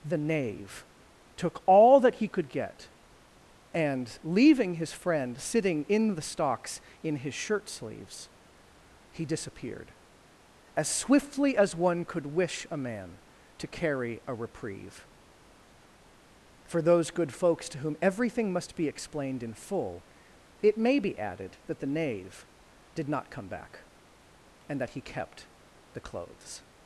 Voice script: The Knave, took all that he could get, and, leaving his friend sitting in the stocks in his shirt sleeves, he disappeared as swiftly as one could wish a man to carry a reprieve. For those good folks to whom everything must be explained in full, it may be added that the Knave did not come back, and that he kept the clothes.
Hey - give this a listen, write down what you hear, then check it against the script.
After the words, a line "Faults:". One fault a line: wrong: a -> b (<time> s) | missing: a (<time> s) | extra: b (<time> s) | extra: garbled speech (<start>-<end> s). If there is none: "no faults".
The Knave, took all that he could get, and, leaving his friend sitting in the stocks in his shirt sleeves, he disappeared as swiftly as one could wish a man to carry a reprieve. For those good folks to whom everything must be explained in full, it may be added that the Knave did not come back, and that he kept the clothes.
Faults:
no faults